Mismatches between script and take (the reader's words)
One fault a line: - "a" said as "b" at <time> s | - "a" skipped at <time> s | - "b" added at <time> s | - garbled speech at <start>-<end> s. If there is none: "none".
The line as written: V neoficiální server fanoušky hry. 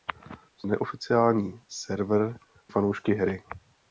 none